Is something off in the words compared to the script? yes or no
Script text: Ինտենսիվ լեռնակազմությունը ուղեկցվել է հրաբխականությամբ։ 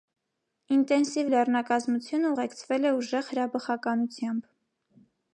yes